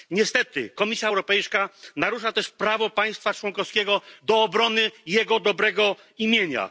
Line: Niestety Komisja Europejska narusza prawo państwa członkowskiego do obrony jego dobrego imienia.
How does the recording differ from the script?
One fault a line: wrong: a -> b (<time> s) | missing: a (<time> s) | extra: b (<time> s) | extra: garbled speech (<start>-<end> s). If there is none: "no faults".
extra: też (2.3 s)